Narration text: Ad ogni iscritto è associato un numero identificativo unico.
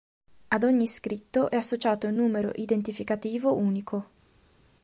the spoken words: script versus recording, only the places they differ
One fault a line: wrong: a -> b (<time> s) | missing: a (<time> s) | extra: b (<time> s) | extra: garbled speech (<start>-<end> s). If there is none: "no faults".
no faults